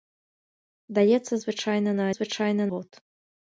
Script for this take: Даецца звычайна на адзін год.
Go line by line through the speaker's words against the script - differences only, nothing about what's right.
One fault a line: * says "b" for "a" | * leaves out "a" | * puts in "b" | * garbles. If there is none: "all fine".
* says "звычайна" for "адзін"